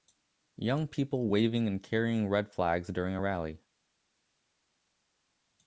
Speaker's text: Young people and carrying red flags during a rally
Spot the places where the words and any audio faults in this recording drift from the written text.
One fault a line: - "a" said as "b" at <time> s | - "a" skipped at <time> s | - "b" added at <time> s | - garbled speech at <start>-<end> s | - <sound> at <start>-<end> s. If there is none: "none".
- "waving" added at 1.3 s